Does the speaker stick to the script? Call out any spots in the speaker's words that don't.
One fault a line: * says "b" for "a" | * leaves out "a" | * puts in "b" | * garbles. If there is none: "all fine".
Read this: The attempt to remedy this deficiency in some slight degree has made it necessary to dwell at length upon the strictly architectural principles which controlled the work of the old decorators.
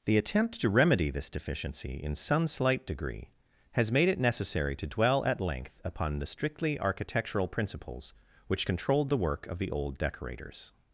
all fine